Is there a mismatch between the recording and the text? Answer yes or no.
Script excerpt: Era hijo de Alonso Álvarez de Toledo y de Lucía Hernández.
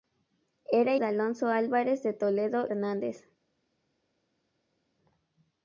yes